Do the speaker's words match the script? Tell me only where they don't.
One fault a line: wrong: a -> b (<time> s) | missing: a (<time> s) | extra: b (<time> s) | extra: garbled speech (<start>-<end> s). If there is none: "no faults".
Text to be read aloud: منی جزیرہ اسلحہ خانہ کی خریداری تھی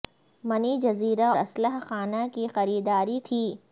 no faults